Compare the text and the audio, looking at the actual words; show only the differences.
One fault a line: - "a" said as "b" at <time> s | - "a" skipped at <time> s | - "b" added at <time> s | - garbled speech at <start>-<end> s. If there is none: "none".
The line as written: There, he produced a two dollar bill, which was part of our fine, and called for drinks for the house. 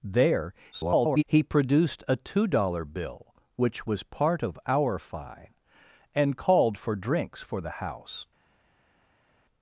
- garbled speech at 0.7-1.2 s